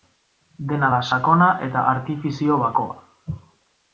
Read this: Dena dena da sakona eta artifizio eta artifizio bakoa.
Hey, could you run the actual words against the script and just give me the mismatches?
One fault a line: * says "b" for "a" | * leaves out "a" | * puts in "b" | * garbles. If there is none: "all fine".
* leaves out "dena"
* leaves out "eta artifizio"